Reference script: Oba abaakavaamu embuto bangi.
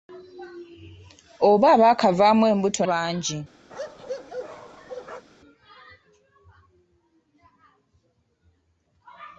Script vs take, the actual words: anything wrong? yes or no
no